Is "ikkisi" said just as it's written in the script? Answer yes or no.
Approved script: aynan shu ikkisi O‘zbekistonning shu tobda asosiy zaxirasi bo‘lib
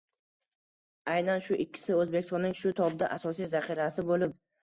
yes